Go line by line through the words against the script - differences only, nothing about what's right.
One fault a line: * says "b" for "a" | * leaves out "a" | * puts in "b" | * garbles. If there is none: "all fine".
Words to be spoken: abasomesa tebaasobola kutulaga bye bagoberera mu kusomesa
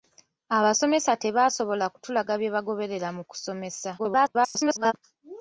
* garbles